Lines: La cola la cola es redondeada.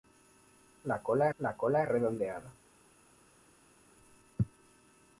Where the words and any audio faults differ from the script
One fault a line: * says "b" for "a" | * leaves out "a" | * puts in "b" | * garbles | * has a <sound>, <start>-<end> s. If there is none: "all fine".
all fine